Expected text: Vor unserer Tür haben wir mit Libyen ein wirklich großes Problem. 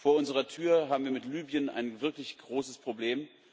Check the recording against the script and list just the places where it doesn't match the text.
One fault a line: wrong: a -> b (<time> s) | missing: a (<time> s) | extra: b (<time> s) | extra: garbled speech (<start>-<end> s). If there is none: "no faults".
no faults